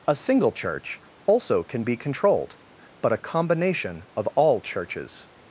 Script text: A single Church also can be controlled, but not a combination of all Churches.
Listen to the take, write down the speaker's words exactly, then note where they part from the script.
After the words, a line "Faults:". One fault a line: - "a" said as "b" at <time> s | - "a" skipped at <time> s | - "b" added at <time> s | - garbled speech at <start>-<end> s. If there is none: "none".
A single Church also can be controlled, but a combination of all Churches.
Faults:
- "not" skipped at 3.1 s